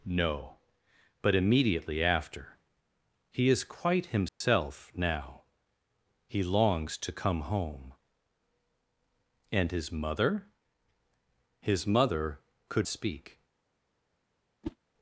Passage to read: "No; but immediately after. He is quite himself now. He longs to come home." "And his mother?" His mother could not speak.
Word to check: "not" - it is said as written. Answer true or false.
false